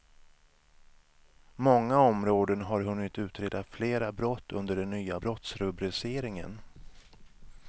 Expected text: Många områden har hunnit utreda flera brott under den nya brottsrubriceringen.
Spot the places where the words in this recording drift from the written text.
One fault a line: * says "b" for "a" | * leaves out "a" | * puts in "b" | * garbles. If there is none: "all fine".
all fine